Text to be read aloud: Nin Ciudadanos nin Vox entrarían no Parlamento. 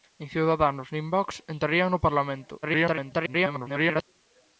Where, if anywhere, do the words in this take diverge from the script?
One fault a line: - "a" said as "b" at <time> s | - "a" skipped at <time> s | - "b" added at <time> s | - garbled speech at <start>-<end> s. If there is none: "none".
- garbled speech at 2.6-4.0 s